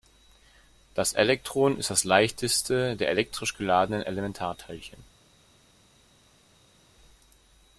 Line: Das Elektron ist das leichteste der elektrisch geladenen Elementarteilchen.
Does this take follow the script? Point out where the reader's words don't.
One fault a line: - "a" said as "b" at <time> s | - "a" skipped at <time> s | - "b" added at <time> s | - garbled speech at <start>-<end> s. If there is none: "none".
none